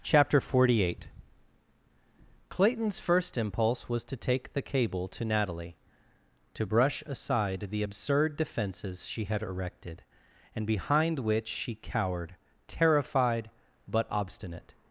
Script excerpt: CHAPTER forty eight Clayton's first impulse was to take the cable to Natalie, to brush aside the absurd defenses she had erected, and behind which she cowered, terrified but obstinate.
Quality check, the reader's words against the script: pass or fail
pass